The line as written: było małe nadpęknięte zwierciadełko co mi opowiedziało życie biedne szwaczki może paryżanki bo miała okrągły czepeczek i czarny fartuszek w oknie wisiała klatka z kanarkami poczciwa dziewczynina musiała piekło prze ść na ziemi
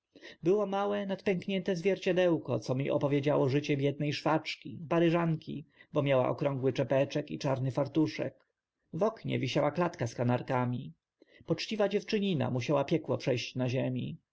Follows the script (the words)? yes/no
no